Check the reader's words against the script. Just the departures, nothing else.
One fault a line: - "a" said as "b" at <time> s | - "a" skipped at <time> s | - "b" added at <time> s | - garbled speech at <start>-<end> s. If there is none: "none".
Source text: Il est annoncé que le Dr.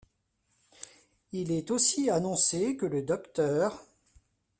- "aussi" added at 1.7 s